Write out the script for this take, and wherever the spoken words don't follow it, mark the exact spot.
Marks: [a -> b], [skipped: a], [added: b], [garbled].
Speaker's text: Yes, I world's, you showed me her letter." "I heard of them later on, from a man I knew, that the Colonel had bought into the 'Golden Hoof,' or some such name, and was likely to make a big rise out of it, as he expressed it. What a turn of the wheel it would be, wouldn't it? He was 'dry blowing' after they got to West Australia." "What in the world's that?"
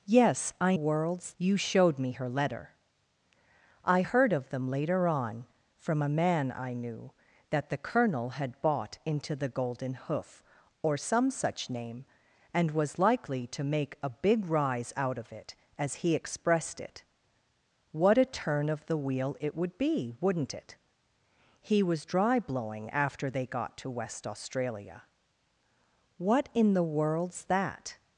Yes, I world's, you showed me her letter." "I heard of them later on, from a man I knew, that the Colonel had bought into the 'Golden Hoof,' or some such name, and was likely to make a big rise out of it, as he expressed it. What a turn of the wheel it would be, wouldn't it? He was 'dry blowing' after they got to West Australia." "What in the world's that?"